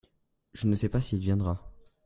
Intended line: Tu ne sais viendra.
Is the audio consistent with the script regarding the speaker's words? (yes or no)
no